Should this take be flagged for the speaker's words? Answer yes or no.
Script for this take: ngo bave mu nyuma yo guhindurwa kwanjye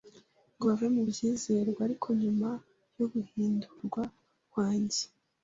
yes